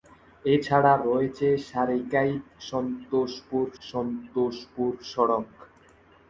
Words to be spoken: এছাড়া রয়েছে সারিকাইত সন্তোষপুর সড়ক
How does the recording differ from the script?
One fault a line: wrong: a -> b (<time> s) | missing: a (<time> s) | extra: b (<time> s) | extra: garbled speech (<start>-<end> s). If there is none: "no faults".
extra: সন্তোষপুর (3.8 s)